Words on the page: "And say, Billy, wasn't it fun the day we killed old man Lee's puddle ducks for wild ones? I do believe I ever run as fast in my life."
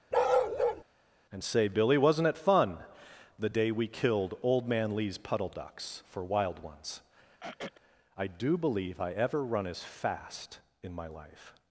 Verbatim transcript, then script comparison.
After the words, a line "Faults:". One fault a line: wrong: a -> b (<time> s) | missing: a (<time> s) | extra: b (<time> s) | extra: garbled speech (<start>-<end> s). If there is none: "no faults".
"And say, Billy, wasn't it fun the day we killed old man Lee's puddle ducks for wild ones? I do believe I ever run as fast in my life."
Faults:
no faults